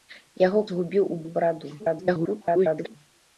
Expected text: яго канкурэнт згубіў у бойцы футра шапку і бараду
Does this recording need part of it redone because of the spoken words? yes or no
yes